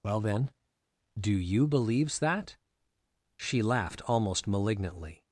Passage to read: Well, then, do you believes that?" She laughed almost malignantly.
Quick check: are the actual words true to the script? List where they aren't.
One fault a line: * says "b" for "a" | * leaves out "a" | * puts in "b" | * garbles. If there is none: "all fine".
all fine